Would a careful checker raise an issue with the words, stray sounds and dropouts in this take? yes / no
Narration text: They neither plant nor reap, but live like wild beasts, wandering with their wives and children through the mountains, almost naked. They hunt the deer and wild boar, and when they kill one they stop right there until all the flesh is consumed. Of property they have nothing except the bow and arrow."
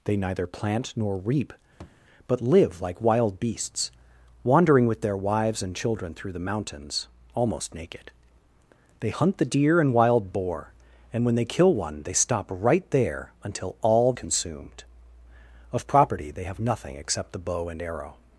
yes